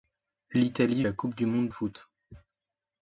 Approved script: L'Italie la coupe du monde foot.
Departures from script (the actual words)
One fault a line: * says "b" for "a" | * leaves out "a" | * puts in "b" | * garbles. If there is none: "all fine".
all fine